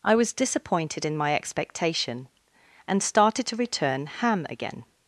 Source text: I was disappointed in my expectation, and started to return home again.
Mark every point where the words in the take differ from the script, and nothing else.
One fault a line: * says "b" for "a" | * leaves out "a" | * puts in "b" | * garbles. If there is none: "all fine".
* says "ham" for "home"